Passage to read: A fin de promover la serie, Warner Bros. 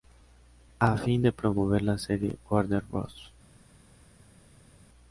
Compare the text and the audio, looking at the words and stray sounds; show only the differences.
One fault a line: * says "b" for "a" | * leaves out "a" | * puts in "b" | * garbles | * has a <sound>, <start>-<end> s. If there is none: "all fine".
all fine